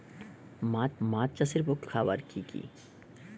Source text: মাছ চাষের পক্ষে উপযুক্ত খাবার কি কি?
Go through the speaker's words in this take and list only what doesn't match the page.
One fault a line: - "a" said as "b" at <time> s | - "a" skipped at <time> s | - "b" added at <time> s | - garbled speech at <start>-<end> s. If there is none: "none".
- "মাছ" added at 1.0 s
- "উপযুক্ত" skipped at 1.9 s